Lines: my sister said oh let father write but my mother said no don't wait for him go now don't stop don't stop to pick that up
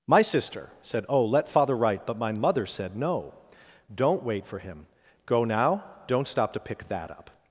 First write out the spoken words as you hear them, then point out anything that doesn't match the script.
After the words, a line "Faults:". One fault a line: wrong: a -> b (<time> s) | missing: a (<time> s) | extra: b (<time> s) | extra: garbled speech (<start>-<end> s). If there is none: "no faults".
my sister said oh let father write but my mother said no don't wait for him go now don't stop to pick that up
Faults:
missing: don't stop (6.5 s)